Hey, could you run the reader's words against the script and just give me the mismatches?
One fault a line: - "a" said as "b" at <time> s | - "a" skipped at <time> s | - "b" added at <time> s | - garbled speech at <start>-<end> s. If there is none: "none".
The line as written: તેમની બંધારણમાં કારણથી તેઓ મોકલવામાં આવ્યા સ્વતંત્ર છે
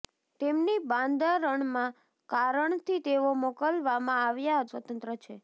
none